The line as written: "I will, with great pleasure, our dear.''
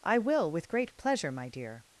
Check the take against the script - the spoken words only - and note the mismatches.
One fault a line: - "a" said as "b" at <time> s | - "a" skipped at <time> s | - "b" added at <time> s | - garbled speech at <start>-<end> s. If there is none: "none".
- "our" said as "my" at 1.3 s